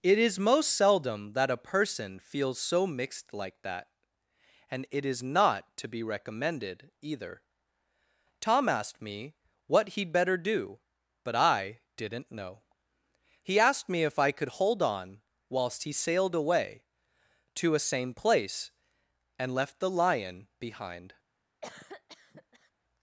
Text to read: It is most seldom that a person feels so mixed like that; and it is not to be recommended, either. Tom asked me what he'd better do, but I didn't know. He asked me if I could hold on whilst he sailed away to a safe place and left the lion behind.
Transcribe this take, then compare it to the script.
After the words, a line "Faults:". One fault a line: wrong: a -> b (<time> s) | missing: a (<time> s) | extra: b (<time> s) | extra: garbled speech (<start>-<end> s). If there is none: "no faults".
It is most seldom that a person feels so mixed like that; and it is not to be recommended, either. Tom asked me what he'd better do, but I didn't know. He asked me if I could hold on whilst he sailed away to a same place and left the lion behind.
Faults:
wrong: safe -> same (17.8 s)